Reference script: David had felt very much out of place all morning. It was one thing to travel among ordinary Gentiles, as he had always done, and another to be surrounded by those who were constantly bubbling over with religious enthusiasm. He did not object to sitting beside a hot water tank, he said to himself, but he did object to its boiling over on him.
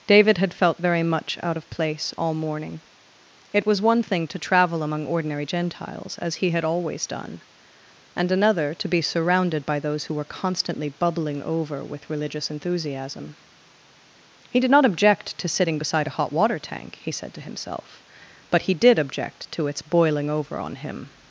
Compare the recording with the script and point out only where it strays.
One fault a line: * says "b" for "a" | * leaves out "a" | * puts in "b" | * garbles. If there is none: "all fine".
all fine